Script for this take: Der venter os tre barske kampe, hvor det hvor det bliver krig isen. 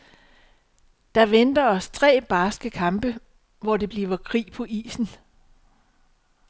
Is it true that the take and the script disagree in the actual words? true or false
true